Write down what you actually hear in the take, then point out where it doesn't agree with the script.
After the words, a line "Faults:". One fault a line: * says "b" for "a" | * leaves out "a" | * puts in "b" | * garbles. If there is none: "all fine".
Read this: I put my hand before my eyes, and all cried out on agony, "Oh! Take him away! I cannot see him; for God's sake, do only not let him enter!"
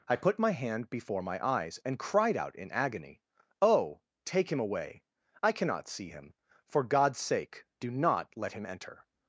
I put my hand before my eyes, and cried out in agony, "Oh! Take him away! I cannot see him; for God's sake, do not let him enter!"
Faults:
* leaves out "all"
* says "in" for "on"
* leaves out "only"